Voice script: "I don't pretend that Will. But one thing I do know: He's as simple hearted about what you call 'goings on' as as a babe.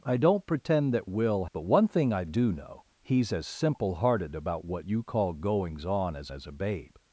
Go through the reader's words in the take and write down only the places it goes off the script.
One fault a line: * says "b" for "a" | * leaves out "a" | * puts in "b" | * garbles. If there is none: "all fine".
all fine